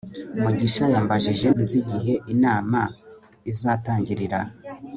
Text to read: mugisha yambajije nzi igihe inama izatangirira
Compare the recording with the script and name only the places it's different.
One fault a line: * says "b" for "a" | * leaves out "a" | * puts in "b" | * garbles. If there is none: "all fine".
all fine